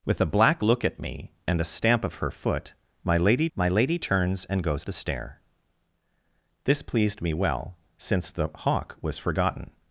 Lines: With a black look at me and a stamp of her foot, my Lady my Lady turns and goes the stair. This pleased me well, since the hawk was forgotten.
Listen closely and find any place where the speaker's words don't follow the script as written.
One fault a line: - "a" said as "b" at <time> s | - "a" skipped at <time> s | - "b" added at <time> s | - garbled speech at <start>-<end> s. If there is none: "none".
none